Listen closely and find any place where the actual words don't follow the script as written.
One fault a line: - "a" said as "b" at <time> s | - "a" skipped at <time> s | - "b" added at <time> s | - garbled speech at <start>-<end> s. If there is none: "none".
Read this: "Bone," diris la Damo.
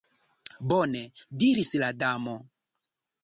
none